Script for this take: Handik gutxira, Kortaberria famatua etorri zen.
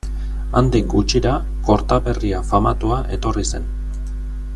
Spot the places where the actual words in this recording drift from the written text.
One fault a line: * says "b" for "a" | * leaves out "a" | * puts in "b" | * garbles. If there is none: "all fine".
all fine